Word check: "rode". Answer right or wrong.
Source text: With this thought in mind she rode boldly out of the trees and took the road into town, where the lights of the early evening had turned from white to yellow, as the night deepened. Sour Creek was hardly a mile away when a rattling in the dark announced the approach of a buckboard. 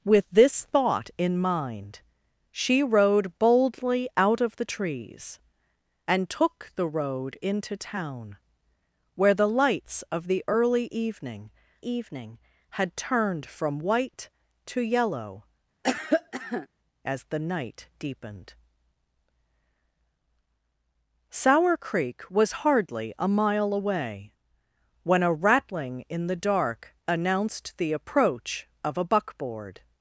right